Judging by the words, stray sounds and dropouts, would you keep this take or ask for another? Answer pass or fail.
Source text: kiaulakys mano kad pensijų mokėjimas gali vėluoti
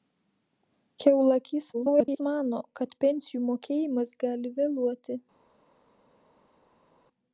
fail